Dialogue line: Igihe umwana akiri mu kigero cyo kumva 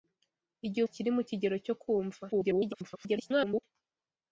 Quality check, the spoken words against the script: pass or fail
fail